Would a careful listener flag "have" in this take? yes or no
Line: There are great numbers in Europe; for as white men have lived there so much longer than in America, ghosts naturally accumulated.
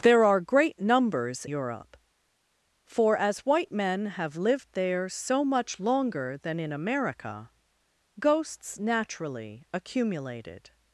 no